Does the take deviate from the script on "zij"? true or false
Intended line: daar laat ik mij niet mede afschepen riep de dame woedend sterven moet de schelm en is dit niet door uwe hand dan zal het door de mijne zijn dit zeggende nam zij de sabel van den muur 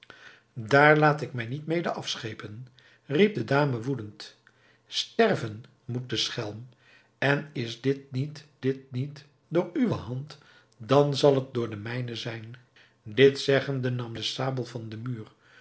true